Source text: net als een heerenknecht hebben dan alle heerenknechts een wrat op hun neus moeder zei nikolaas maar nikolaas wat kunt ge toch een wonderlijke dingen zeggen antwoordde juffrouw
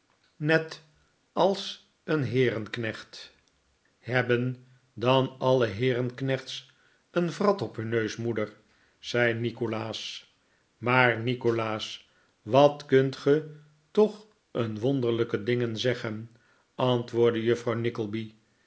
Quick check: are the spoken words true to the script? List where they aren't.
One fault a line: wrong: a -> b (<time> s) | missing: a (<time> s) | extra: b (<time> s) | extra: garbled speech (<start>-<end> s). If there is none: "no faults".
no faults